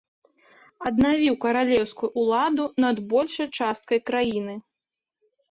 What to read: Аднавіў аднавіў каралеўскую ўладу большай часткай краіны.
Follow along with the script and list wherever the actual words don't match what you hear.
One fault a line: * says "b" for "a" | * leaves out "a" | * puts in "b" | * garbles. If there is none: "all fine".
* leaves out "аднавіў"
* puts in "над"